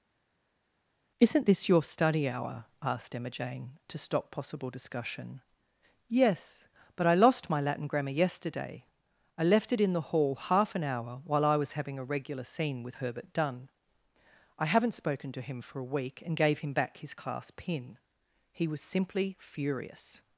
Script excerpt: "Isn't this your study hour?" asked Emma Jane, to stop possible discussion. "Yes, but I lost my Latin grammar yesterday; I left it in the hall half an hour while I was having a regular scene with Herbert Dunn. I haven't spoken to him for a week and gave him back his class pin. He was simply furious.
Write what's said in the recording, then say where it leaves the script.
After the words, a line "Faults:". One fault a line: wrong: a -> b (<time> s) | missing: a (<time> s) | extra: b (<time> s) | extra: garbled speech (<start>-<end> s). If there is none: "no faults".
"Isn't this your study hour?" asked Emma Jane, to stop possible discussion. "Yes, but I lost my Latin grammar yesterday; I left it in the hall half an hour while I was having a regular scene with Herbert Dunn. I haven't spoken to him for a week and gave him back his class pin. He was simply furious.
Faults:
no faults